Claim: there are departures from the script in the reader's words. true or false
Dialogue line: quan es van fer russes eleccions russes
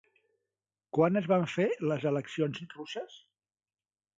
true